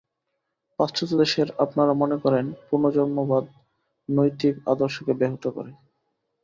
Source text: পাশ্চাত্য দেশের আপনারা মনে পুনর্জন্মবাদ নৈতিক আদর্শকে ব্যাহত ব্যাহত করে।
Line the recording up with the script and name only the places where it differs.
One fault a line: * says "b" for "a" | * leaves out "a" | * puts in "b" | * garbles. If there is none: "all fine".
* puts in "করেন"
* leaves out "ব্যাহত"